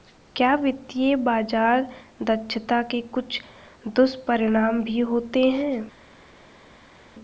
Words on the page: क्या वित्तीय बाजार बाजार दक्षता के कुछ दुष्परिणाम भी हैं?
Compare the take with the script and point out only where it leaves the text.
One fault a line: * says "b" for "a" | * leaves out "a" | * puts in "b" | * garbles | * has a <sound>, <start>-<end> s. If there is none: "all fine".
* leaves out "बाजार"
* puts in "होते"